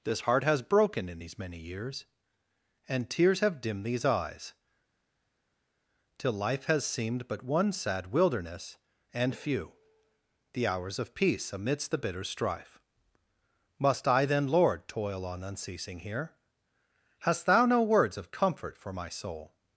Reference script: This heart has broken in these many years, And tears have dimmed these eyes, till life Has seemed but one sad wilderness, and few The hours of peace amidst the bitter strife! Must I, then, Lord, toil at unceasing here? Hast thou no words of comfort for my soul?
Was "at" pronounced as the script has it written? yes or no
no